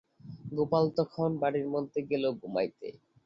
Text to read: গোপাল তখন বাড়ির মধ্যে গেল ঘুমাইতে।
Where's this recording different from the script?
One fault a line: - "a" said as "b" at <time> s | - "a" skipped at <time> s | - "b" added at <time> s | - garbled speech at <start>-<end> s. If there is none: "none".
none